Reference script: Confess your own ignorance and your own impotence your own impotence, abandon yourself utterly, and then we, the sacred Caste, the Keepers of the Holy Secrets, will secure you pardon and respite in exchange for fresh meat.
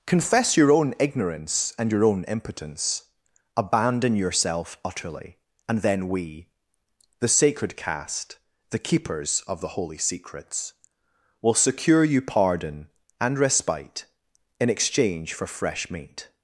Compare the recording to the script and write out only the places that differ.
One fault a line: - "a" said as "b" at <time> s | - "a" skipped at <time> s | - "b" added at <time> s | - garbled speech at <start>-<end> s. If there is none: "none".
- "your own impotence" skipped at 3.0 s